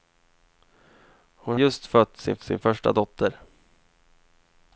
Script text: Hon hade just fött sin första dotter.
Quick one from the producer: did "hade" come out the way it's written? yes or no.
no